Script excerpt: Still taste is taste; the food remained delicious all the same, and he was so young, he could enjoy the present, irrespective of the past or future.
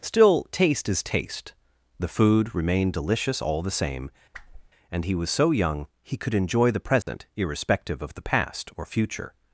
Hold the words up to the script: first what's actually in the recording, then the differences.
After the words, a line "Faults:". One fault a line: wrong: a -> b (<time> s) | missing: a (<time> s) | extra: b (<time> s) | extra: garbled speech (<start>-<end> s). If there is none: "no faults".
Still taste is taste; the food remained delicious all the same, and he was so young, he could enjoy the present, irrespective of the past or future.
Faults:
no faults